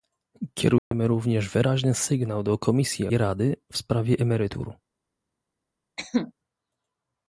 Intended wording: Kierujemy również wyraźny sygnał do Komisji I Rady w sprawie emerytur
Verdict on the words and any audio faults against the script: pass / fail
fail